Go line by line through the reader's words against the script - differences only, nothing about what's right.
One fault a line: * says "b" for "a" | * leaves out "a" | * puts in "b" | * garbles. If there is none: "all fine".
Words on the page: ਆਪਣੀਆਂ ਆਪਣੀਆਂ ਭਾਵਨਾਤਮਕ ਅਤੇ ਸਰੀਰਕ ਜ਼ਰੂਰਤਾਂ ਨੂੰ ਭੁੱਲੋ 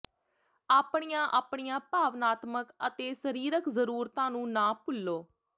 * puts in "ਨਾ"